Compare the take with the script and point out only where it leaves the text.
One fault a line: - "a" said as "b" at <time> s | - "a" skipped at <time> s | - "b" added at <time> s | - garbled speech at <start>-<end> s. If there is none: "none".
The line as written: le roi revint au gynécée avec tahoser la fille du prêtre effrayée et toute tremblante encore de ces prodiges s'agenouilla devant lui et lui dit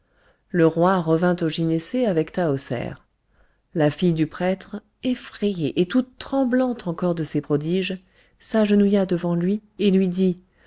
none